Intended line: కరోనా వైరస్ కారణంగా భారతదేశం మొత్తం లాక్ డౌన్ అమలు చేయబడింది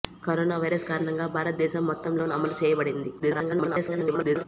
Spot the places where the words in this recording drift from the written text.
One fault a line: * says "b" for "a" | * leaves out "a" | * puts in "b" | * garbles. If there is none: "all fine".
* leaves out "లాక్"
* garbles